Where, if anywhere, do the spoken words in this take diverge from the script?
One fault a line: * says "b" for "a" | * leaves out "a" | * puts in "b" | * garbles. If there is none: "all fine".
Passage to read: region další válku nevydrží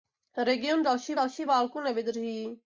* puts in "další"